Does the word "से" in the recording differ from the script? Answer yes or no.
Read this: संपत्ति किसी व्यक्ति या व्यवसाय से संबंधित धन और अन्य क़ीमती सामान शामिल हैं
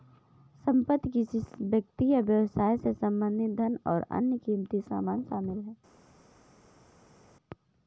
no